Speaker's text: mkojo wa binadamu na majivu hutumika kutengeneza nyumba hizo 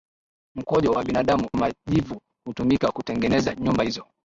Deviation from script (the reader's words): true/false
true